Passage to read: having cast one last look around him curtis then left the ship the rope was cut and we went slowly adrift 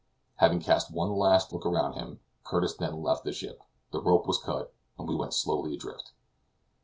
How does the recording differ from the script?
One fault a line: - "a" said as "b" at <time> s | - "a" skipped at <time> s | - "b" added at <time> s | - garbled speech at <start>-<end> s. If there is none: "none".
none